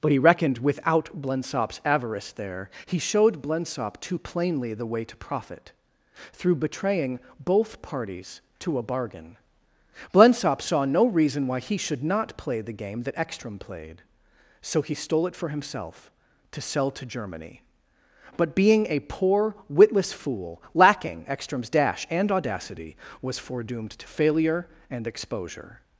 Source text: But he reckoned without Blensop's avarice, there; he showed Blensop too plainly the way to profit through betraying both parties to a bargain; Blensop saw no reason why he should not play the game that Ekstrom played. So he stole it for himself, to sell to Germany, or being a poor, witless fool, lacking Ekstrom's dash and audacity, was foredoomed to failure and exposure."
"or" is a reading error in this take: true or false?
true